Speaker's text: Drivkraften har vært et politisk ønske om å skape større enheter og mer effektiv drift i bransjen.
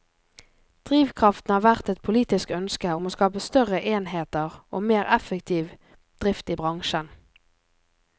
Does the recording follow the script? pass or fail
pass